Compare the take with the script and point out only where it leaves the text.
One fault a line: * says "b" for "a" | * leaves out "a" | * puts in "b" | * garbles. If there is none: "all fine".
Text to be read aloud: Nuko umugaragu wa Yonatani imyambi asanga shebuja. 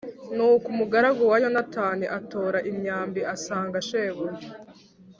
* puts in "atora"